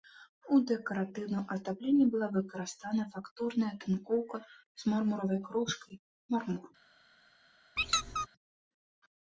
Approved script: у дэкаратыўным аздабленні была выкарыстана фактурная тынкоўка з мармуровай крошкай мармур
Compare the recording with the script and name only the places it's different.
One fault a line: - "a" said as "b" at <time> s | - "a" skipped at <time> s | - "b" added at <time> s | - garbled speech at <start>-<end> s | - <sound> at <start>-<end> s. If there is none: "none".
- squeak at 7.8-8.3 s